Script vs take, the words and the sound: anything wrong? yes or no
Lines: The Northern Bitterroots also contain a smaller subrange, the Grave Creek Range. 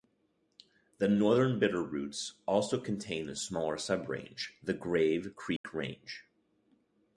yes